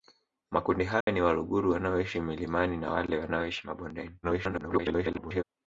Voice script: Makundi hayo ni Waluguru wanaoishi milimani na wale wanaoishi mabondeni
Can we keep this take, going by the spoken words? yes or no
no